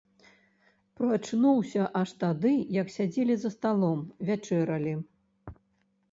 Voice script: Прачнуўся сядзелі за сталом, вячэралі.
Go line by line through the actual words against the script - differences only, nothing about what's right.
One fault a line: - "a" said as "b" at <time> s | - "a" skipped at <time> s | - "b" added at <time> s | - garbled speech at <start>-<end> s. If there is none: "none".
- "аж тады як" added at 2.0 s